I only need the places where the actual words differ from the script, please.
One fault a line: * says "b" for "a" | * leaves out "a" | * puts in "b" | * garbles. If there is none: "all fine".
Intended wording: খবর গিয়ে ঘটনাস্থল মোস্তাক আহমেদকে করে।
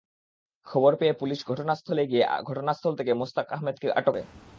* puts in "পেয়ে পুলিশ ঘটনাস্থলে"
* puts in "থেকে"
* puts in "আটক"